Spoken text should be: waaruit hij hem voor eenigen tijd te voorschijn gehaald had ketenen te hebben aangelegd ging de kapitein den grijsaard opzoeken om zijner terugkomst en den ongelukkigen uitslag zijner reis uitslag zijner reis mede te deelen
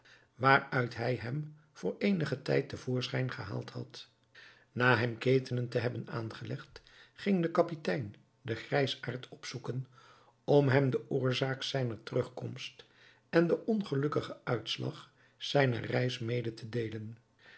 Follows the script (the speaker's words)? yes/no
no